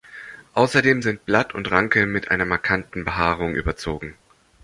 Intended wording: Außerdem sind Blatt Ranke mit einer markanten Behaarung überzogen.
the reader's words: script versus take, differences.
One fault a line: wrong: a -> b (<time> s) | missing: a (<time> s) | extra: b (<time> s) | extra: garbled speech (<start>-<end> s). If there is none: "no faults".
extra: und (1.5 s)